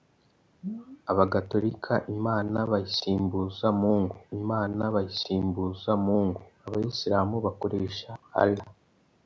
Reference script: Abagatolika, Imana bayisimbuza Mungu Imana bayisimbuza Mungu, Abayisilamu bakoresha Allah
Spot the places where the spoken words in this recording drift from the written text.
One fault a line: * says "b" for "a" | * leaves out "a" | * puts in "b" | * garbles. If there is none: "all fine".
all fine